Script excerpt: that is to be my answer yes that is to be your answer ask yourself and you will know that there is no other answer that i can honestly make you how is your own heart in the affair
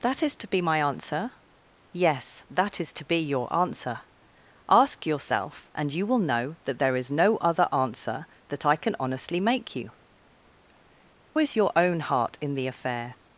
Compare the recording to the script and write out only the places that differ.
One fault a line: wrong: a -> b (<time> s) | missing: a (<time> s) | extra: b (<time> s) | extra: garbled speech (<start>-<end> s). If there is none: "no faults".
missing: how (9.9 s)